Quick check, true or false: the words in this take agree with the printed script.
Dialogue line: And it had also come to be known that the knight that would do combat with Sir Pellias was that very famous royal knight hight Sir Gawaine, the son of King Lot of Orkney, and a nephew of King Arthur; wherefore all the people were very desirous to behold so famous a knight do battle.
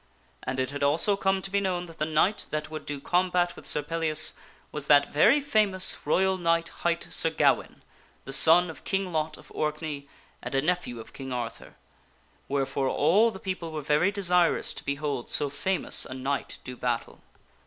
true